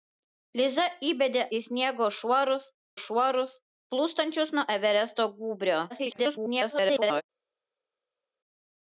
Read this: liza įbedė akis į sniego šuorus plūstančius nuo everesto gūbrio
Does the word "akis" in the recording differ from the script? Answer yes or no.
yes